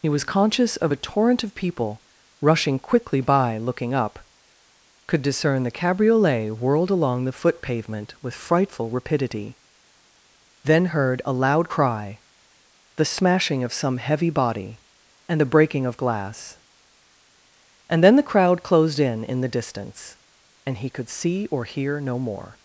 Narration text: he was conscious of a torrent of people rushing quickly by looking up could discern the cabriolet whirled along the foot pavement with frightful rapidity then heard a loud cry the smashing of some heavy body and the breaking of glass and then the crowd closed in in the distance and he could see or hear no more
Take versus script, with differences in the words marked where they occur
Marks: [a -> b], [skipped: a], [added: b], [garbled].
he was conscious of a torrent of people rushing quickly by looking up could discern the cabriolet whirled along the foot pavement with frightful rapidity then heard a loud cry the smashing of some heavy body and the breaking of glass and then the crowd closed in in the distance and he could see or hear no more